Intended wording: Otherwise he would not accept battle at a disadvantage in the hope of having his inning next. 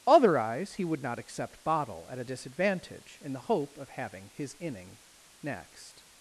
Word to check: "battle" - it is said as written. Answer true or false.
false